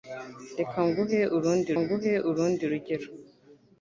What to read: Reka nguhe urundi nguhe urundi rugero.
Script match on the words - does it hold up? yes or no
yes